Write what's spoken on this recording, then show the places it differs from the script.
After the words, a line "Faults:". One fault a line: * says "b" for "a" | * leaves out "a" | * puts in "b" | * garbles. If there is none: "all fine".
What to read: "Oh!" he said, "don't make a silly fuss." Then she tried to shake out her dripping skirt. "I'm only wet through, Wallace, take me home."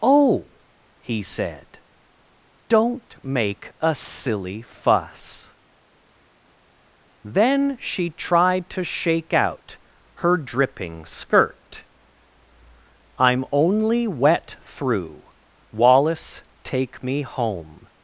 "Oh!" he said, "don't make a silly fuss." Then she tried to shake out her dripping skirt. "I'm only wet through, Wallace, take me home."
Faults:
all fine